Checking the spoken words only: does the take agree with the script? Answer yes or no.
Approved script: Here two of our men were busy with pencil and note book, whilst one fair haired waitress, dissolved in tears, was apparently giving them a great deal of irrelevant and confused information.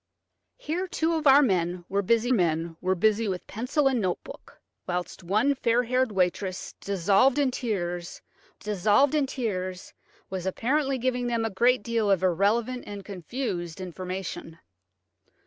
no